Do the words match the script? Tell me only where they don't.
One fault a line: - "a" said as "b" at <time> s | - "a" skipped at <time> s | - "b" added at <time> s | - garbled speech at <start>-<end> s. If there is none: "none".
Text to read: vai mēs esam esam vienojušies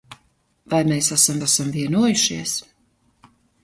none